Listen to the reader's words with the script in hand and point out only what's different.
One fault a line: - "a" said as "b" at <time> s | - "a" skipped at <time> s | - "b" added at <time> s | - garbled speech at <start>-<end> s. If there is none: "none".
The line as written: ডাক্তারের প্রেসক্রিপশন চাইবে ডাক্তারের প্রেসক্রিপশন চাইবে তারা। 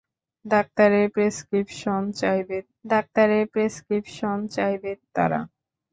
none